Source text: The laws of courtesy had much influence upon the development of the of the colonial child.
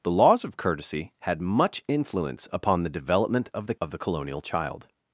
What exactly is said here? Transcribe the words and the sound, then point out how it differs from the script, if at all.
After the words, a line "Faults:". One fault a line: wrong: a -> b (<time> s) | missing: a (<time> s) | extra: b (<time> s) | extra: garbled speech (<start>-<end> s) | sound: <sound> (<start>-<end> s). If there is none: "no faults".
The laws of courtesy had much influence upon the development of the of the colonial child.
Faults:
no faults